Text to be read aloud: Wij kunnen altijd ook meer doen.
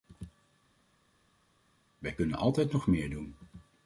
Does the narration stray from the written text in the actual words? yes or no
yes